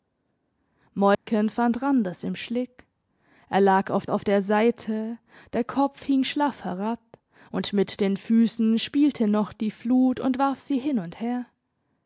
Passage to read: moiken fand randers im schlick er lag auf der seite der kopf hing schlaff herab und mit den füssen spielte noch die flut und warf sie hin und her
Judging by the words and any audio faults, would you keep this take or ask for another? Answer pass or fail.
fail